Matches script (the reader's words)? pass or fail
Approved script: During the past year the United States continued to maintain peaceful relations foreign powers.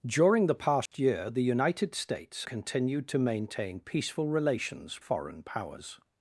pass